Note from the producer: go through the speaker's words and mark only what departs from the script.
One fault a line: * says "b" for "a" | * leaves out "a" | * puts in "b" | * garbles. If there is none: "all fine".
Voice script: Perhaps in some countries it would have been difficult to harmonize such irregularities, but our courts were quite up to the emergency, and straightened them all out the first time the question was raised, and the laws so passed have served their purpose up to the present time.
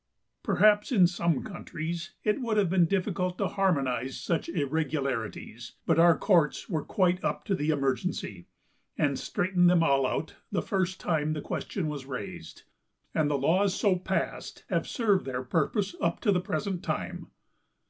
all fine